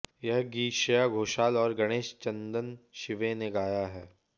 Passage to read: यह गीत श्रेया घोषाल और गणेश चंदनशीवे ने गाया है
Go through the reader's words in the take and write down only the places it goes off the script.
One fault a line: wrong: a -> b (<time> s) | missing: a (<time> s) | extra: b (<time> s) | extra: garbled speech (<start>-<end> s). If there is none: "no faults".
no faults